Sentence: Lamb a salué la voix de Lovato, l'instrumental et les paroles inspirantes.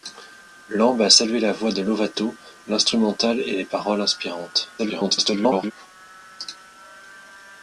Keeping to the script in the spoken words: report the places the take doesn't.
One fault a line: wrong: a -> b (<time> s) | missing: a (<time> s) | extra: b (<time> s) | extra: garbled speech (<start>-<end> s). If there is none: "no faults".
extra: garbled speech (4.8-5.7 s)